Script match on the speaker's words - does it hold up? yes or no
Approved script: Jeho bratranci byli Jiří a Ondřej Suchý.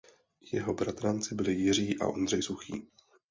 yes